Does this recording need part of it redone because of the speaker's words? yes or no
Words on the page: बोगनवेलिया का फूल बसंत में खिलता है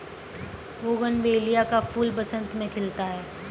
no